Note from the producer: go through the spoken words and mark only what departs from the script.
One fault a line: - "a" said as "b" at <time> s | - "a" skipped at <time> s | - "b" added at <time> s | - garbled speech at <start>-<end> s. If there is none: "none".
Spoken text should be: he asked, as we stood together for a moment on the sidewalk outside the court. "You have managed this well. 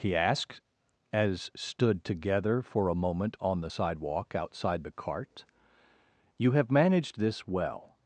- "we" skipped at 1.5 s
- "court" said as "cart" at 4.9 s